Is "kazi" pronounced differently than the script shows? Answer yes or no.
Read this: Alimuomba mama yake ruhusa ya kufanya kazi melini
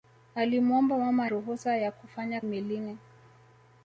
yes